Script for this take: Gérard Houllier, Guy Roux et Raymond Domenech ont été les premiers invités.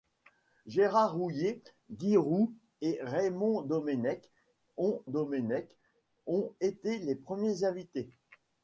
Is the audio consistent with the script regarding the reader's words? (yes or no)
no